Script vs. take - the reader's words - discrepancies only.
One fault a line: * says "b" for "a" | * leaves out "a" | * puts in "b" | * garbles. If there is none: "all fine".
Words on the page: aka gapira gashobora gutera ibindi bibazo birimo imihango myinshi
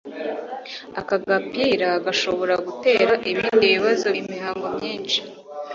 * leaves out "birimo"